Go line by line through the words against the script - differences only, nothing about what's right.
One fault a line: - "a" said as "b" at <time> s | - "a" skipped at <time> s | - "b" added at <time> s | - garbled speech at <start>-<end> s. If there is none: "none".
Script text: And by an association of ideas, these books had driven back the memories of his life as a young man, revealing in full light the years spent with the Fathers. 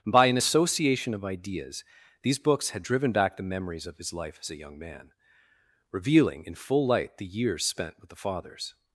- "And" skipped at 0.1 s